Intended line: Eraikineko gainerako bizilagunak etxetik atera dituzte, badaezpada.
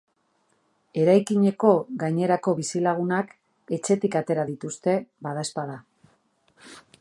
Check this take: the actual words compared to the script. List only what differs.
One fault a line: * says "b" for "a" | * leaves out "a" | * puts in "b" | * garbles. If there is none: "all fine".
all fine